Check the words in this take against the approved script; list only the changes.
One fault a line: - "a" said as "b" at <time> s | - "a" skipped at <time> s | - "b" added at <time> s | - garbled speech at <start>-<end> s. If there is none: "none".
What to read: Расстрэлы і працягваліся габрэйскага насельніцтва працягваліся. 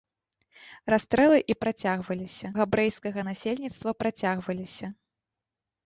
none